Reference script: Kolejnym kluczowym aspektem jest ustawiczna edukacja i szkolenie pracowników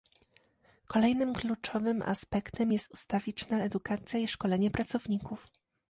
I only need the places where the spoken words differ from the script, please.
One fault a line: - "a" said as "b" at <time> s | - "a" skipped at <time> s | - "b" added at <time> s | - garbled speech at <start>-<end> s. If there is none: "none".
none